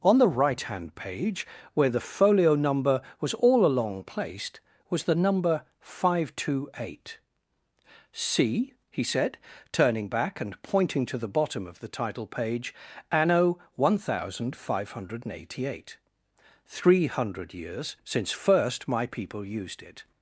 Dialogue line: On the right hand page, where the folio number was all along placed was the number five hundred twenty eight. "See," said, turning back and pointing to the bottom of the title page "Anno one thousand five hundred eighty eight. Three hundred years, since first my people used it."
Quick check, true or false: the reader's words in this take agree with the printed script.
false